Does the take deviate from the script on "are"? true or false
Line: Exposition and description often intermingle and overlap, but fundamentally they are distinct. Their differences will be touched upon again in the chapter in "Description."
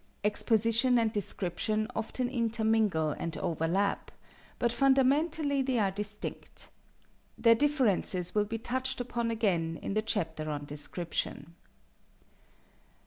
false